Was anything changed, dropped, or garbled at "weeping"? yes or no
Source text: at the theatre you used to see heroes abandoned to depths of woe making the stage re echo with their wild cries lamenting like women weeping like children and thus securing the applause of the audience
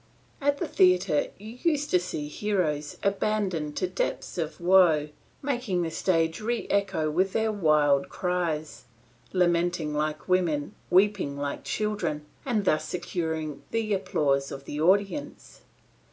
no